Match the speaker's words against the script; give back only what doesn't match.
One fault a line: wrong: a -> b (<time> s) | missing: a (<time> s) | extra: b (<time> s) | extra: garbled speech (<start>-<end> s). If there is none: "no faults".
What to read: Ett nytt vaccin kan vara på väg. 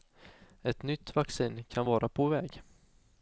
no faults